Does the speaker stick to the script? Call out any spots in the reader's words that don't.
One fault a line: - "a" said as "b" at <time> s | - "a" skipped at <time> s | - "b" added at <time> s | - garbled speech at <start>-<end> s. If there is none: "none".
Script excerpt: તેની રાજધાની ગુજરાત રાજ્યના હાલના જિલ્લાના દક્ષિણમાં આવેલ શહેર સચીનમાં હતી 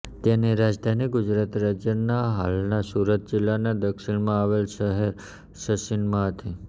- "સુરત" added at 2.9 s